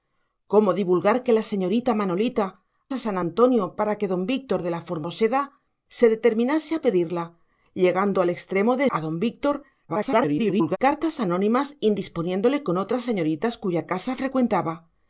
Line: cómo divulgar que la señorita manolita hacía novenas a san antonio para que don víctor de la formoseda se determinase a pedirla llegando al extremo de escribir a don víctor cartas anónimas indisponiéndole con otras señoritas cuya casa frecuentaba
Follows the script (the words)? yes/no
no